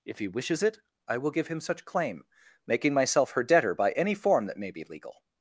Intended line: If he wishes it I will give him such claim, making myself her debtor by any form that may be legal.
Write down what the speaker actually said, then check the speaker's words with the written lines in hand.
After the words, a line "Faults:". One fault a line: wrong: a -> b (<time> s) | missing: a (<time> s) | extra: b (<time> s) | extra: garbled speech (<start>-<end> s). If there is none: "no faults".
If he wishes it I will give him such claim, making myself her debtor by any form that may be legal.
Faults:
no faults